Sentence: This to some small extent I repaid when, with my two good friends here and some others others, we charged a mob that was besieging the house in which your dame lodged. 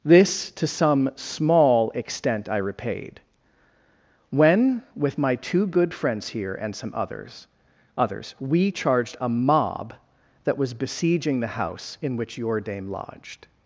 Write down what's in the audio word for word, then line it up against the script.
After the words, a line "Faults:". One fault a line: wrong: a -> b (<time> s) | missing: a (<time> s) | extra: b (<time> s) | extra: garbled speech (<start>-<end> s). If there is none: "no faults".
This to some small extent I repaid when, with my two good friends here and some others others, we charged a mob that was besieging the house in which your dame lodged.
Faults:
no faults